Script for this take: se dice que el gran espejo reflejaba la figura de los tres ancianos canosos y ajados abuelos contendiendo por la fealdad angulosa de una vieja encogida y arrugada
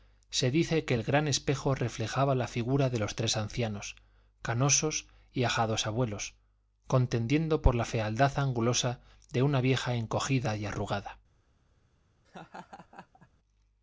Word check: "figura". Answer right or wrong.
right